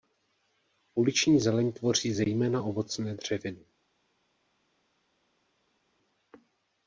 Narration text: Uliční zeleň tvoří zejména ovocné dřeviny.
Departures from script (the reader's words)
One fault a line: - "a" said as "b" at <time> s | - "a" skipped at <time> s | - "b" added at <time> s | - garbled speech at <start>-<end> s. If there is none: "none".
none